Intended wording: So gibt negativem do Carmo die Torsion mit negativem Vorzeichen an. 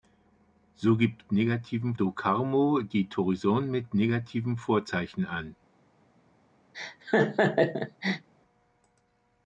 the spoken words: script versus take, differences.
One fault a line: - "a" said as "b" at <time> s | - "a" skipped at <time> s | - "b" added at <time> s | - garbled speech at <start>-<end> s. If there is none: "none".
none